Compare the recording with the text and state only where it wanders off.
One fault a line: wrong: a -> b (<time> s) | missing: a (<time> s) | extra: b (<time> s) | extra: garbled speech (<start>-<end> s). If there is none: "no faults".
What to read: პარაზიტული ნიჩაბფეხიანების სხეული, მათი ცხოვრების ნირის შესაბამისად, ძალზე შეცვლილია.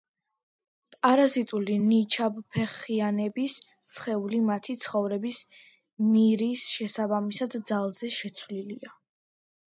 no faults